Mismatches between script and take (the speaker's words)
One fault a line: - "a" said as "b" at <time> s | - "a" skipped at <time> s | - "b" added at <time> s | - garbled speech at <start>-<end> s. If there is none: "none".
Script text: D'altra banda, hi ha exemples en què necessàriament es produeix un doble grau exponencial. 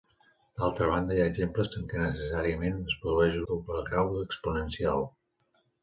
- "un" skipped at 3.4 s